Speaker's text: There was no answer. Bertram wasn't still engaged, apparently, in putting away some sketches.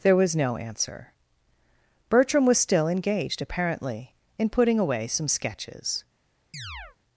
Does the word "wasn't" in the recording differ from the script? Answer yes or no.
yes